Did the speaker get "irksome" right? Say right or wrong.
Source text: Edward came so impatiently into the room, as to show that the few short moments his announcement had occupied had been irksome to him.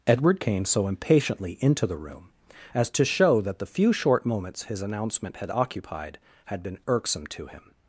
right